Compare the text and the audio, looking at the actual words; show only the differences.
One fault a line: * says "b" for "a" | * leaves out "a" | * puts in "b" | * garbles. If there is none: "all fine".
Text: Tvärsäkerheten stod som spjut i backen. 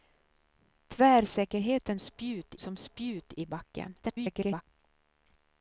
* says "spjut" for "stod"
* garbles